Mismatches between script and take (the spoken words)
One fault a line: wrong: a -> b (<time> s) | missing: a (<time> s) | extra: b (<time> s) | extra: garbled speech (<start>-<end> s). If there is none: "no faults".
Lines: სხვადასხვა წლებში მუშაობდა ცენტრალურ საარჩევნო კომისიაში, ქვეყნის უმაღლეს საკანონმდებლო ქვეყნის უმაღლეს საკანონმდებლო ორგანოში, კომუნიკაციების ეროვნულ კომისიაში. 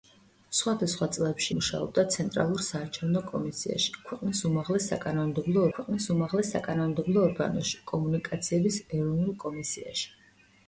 no faults